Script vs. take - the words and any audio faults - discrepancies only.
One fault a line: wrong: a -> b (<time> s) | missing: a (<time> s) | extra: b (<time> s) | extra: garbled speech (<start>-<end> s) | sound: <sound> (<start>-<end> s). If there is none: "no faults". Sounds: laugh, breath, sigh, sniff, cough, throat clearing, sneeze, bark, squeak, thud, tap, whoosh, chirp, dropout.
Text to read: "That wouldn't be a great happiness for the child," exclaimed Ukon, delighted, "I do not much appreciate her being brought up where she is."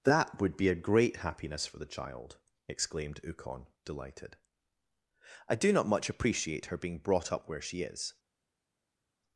wrong: wouldn't -> would (0.4 s)